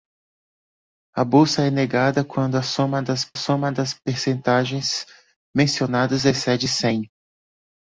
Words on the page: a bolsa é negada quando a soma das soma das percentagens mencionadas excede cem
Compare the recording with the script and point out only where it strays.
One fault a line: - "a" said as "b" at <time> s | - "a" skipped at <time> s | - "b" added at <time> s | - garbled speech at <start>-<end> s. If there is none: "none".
none